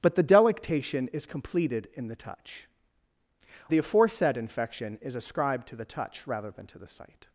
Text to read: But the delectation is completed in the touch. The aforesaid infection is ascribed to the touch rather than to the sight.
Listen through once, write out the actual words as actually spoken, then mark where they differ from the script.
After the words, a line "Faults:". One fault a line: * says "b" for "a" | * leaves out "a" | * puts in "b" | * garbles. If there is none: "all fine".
But the delectation is completed in the touch. The aforesaid infection is ascribed to the touch rather than to the sight.
Faults:
all fine